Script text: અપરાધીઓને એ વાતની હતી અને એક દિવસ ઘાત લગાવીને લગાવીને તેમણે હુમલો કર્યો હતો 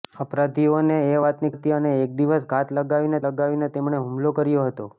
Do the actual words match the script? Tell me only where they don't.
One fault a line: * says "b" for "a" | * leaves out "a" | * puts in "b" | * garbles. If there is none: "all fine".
all fine